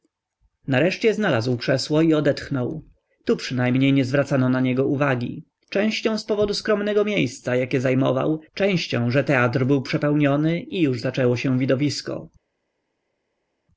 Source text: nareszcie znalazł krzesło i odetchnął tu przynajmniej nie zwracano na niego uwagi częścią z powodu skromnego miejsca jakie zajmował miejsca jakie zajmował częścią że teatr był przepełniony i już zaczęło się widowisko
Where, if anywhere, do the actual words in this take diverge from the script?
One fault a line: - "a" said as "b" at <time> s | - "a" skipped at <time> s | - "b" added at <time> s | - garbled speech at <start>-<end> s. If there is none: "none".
- "miejsca jakie zajmował" skipped at 8.4 s